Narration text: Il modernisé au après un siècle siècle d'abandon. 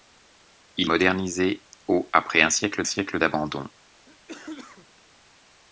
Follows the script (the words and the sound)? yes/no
no